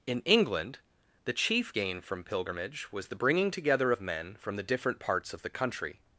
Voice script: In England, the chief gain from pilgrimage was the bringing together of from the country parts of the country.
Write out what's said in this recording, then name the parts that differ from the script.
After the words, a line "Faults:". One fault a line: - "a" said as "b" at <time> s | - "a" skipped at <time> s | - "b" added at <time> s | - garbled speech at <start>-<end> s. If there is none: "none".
In England, the chief gain from pilgrimage was the bringing together of men from the different parts of the country.
Faults:
- "men" added at 4.0 s
- "country" said as "different" at 4.6 s